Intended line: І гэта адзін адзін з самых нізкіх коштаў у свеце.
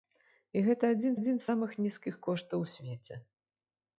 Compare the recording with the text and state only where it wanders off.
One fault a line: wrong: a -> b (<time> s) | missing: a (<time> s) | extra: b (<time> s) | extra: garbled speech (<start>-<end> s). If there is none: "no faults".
no faults